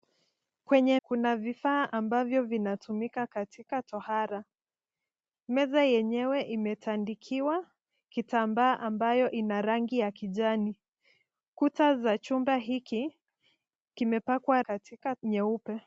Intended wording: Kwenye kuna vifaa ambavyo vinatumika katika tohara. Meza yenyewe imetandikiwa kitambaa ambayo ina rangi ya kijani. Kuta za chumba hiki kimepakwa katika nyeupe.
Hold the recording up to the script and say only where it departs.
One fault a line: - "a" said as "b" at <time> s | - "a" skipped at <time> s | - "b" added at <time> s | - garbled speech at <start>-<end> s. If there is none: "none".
none